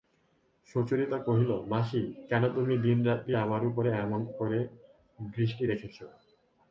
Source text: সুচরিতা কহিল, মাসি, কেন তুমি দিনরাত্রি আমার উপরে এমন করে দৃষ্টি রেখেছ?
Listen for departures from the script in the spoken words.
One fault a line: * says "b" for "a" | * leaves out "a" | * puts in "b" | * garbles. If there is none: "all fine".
all fine